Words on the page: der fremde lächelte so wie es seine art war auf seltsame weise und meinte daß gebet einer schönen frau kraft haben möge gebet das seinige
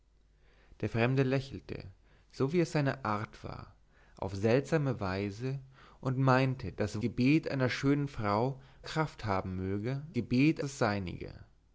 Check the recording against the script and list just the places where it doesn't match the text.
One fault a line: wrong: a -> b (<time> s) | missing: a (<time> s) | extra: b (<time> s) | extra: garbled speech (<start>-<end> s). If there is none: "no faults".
no faults